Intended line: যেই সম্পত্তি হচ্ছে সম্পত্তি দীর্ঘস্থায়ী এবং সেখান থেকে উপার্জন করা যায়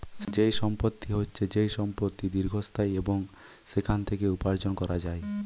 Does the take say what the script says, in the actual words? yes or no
no